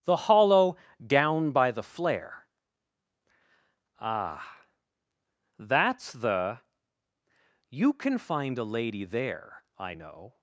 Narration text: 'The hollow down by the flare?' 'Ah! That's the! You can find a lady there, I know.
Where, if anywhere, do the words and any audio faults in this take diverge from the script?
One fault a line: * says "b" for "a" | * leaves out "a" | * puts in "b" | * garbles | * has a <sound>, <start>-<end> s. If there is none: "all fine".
all fine